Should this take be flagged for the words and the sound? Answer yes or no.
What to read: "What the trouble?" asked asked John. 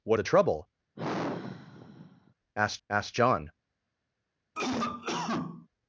yes